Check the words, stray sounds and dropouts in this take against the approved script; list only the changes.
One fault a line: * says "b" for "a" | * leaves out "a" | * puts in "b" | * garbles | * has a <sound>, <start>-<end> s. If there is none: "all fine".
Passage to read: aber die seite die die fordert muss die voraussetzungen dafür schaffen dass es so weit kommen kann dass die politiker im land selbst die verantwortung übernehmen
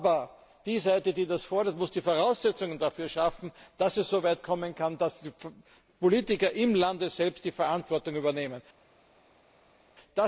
* says "das" for "die"